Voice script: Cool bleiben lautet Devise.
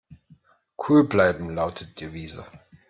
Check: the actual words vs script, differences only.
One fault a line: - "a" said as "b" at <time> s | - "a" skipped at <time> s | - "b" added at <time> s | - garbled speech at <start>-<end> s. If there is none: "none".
none